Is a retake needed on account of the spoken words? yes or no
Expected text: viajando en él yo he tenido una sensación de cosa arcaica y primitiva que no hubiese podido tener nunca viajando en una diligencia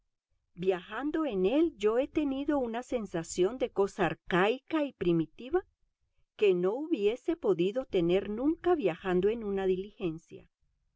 no